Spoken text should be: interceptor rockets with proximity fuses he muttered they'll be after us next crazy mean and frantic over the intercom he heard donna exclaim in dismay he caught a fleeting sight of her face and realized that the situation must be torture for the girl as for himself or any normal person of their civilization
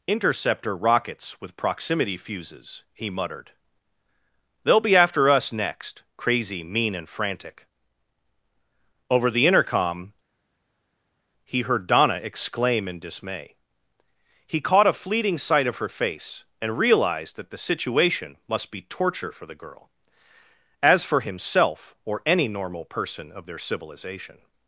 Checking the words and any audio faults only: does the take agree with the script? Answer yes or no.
yes